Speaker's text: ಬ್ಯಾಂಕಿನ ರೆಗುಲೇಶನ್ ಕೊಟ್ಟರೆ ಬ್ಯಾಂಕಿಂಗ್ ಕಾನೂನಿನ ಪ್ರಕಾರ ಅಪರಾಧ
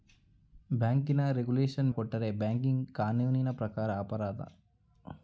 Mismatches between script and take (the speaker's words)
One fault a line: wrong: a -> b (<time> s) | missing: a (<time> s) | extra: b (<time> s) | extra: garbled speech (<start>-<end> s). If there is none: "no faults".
no faults